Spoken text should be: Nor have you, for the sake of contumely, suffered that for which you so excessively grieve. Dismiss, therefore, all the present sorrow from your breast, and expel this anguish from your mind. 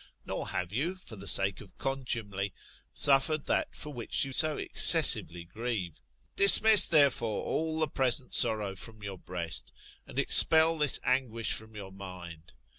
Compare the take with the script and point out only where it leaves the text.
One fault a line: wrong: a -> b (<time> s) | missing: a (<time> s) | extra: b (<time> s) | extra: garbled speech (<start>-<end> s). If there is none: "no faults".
no faults